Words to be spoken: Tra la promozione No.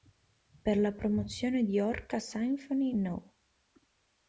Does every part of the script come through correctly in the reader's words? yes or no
no